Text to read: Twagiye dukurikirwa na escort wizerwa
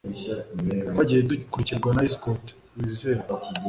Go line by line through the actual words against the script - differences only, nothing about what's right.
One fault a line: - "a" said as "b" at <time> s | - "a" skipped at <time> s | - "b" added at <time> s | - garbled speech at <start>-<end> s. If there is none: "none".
none